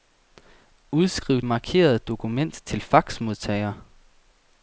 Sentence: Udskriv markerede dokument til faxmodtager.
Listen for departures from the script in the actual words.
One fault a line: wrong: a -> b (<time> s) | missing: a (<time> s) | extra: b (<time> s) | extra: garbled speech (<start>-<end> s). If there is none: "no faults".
no faults